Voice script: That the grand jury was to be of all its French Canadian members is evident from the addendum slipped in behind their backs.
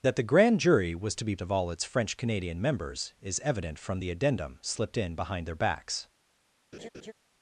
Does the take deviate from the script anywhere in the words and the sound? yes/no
yes